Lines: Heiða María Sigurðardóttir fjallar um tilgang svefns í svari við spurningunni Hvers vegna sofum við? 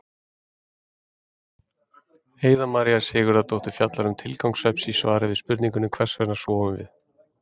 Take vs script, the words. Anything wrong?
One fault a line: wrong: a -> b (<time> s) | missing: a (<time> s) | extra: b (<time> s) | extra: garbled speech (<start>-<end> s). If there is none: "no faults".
no faults